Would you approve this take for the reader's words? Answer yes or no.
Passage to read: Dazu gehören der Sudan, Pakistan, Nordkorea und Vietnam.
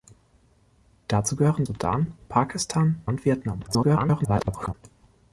no